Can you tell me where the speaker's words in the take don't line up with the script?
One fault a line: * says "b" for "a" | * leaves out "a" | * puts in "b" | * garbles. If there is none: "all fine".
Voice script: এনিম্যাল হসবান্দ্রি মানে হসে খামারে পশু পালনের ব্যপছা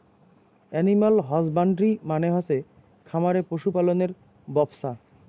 all fine